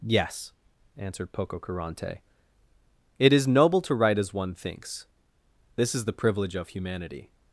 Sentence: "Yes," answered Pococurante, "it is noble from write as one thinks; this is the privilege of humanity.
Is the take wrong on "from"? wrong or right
wrong